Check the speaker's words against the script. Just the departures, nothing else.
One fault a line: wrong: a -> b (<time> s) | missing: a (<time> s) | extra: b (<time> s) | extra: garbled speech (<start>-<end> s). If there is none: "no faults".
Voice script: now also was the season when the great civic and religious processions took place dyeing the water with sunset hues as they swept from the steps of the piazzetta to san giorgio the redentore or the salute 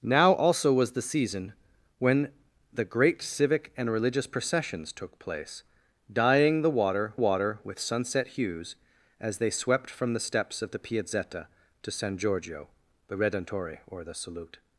extra: water (7.1 s)